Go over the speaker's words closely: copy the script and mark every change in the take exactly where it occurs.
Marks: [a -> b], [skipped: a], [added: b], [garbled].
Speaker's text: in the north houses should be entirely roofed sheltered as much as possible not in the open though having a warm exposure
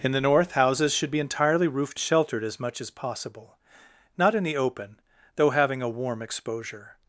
in the north houses should be entirely roofed sheltered as much as possible not in the open though having a warm exposure